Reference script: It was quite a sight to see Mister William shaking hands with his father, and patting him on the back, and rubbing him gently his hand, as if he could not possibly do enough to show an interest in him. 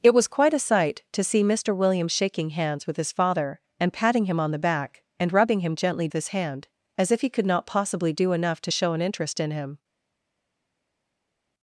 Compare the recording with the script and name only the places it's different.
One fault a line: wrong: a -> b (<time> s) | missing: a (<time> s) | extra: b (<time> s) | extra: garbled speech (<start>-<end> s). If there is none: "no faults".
no faults